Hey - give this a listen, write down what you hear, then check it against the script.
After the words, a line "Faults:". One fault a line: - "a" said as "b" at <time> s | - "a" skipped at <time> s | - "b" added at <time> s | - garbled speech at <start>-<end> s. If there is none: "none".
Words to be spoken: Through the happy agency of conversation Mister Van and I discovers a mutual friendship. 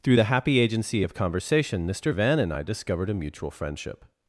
Through the happy agency of conversation Mister Van and I discovered a mutual friendship.
Faults:
- "discovers" said as "discovered" at 2.6 s